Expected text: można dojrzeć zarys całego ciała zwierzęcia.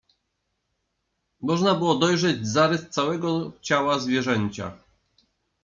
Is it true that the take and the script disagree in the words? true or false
true